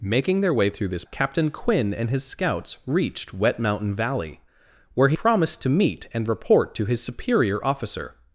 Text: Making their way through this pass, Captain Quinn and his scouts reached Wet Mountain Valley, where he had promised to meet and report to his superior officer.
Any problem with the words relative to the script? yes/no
yes